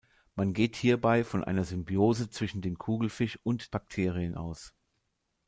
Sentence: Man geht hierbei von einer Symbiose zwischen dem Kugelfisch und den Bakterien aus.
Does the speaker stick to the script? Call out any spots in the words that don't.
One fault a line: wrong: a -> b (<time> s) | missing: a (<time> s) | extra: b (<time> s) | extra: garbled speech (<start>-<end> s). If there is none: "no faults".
missing: den (3.8 s)